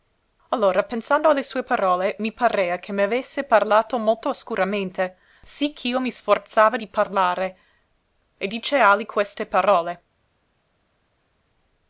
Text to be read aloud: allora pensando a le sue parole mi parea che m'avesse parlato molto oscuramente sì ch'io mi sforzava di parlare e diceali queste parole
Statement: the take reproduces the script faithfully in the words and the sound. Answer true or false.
true